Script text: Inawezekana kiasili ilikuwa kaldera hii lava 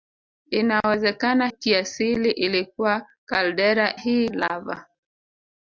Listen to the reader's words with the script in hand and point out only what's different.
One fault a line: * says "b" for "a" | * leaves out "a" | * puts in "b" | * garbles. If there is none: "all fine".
all fine